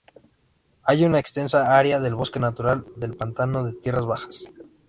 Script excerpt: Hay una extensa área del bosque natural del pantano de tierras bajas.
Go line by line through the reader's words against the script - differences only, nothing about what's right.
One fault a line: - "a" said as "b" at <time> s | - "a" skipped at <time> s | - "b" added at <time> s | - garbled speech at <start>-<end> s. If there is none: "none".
none